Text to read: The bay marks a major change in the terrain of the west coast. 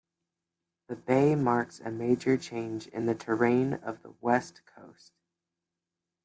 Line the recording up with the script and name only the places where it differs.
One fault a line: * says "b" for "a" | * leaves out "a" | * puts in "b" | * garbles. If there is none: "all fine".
all fine